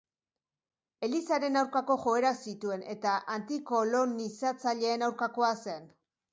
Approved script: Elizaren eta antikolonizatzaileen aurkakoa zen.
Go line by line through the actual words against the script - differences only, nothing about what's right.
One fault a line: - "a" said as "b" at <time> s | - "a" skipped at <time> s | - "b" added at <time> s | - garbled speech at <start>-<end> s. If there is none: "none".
- "aurkako joerak zituen" added at 1.6 s